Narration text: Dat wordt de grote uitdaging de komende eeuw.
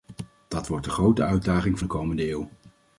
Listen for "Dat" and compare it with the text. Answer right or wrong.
right